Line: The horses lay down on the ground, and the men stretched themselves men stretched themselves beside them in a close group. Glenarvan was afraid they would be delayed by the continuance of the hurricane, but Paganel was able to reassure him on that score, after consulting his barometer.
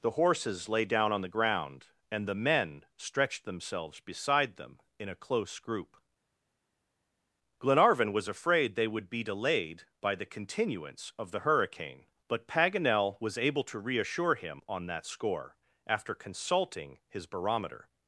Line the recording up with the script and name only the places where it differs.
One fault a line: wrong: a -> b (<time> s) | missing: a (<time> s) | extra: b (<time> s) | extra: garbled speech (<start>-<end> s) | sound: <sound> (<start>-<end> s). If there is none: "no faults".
missing: men stretched themselves (4.0 s)